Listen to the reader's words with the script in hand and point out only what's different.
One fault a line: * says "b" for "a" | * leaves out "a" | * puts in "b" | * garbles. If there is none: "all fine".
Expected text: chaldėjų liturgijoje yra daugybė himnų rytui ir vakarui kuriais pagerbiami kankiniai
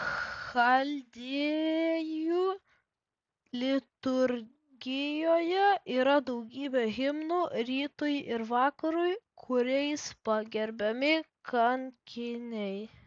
all fine